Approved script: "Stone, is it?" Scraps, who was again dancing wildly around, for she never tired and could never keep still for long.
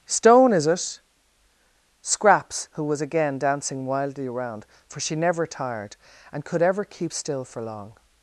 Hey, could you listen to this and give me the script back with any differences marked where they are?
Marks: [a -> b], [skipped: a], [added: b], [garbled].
"Stone, is it?" Scraps, who was again dancing wildly around, for she never tired and could [never -> ever] keep still for long.